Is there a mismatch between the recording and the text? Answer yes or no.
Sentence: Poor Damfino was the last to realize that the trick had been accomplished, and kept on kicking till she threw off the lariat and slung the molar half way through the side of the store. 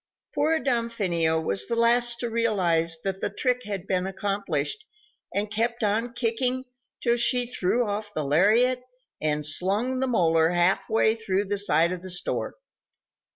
no